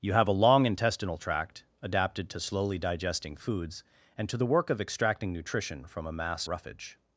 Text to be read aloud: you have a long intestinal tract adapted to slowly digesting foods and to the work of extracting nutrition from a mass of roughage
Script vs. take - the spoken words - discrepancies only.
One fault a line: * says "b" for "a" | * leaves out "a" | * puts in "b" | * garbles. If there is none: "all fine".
* leaves out "of"